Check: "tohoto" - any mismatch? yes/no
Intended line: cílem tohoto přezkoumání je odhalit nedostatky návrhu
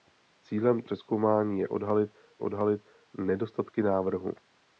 yes